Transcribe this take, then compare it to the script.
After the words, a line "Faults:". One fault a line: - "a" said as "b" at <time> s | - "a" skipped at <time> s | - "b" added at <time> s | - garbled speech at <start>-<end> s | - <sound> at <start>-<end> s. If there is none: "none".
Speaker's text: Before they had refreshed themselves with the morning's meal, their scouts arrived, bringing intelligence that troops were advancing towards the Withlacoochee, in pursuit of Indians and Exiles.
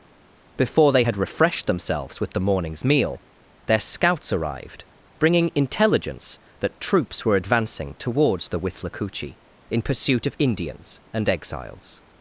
Before they had refreshed themselves with the morning's meal, their scouts arrived, bringing intelligence that troops were advancing towards the Withlacoochee, in pursuit of Indians and Exiles.
Faults:
none